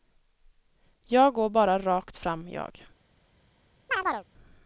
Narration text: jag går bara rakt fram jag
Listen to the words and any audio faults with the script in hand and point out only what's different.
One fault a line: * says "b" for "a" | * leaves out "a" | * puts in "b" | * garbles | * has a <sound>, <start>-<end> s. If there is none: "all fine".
* has a chirp, 3.9-4.3 s